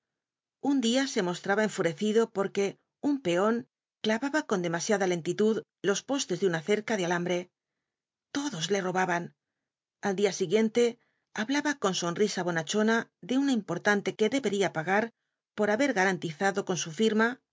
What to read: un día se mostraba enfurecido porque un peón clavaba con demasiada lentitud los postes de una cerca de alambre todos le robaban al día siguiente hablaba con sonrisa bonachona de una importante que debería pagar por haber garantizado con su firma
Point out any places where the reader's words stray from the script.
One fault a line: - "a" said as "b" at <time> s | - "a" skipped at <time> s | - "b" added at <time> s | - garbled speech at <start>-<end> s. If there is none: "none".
none